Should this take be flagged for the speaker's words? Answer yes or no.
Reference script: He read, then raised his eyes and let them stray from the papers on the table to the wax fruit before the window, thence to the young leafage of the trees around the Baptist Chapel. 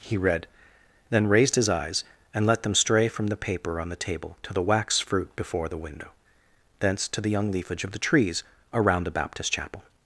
yes